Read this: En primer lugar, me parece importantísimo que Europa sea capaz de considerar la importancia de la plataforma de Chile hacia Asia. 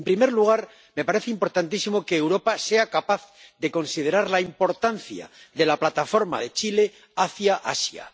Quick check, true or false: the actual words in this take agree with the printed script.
true